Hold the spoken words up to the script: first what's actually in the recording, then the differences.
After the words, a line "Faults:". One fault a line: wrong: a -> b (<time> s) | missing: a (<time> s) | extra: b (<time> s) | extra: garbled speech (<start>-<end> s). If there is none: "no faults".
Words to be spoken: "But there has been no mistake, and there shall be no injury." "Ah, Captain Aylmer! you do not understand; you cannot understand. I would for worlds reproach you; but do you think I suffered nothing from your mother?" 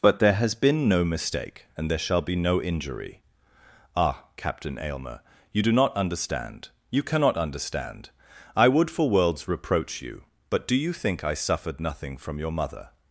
"But there has been no mistake, and there shall be no injury." "Ah, Captain Aylmer! you do not understand; you cannot understand. I would for worlds reproach you; but do you think I suffered nothing from your mother?"
Faults:
no faults